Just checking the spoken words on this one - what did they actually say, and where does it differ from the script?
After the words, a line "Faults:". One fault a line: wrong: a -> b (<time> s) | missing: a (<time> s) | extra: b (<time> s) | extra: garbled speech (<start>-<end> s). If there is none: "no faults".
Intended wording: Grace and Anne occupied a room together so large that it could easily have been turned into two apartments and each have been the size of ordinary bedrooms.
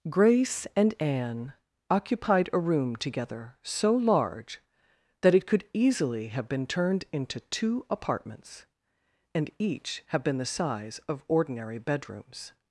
Grace and Anne occupied a room together so large that it could easily have been turned into two apartments and each have been the size of ordinary bedrooms.
Faults:
no faults